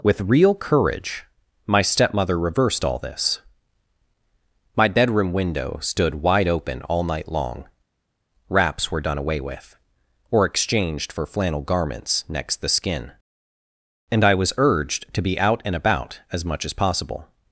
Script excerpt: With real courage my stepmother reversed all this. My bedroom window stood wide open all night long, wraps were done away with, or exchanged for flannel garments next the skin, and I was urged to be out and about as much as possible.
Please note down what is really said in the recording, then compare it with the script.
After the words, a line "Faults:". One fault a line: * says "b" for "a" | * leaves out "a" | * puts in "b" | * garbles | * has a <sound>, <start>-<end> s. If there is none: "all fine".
With real courage my stepmother reversed all this. My bedroom window stood wide open all night long, wraps were done away with, or exchanged for flannel garments next the skin, and I was urged to be out and about as much as possible.
Faults:
all fine